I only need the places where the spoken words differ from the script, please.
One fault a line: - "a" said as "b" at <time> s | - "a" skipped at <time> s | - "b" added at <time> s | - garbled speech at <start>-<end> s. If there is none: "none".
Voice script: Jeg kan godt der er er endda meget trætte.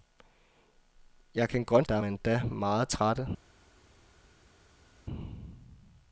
none